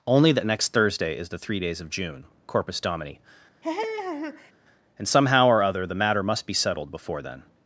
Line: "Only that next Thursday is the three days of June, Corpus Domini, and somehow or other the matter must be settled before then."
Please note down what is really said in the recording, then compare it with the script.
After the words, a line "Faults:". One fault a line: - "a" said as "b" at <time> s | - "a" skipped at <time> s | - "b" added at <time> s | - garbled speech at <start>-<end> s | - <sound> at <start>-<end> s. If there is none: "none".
"Only that next Thursday is the three days of June, Corpus Domini, and somehow or other the matter must be settled before then."
Faults:
- laugh at 3.6-4.5 s